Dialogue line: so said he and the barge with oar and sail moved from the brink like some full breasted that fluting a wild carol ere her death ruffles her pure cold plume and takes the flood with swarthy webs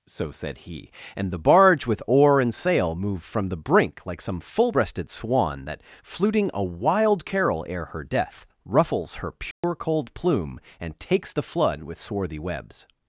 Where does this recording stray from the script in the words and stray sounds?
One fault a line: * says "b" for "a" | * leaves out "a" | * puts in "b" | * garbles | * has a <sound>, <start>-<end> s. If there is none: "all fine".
* puts in "swan"
* has a dropout, 9.5-9.6 s